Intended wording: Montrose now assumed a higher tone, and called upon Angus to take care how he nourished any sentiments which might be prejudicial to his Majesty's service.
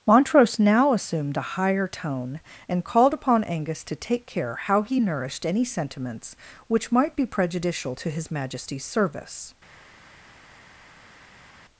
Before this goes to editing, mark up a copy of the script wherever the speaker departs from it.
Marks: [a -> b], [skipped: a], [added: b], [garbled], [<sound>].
Montrose now assumed a higher tone, and called upon Angus to take care how he nourished any sentiments which might be prejudicial to his Majesty's service.